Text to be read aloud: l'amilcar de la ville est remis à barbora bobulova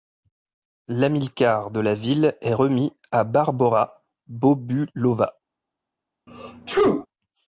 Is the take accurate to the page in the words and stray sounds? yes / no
no